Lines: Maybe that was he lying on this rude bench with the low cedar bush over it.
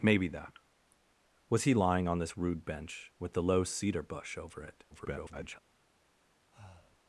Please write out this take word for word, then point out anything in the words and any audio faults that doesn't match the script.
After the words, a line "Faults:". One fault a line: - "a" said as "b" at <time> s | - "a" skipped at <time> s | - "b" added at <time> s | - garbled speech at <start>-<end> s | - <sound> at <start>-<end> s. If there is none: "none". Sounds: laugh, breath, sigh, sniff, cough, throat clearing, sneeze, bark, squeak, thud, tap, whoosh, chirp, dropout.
Maybe that was he lying on this rude bench with the low cedar bush over it. [garbled]
Faults:
- garbled speech at 4.9-5.6 s
- breath at 6.5-7.0 s